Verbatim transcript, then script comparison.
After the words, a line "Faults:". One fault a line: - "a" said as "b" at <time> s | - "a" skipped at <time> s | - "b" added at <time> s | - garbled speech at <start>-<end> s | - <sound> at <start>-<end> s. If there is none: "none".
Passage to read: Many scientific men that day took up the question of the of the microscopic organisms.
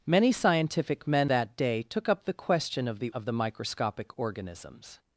Many scientific men that day took up the question of the of the microscopic organisms.
Faults:
none